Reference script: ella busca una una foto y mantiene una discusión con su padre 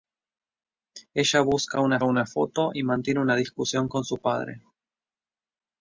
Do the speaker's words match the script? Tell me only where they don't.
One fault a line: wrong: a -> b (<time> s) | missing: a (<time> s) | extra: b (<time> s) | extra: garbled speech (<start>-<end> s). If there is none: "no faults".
no faults